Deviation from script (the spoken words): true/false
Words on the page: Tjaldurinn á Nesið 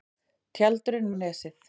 false